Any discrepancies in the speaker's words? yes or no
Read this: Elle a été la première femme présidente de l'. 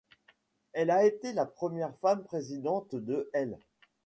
no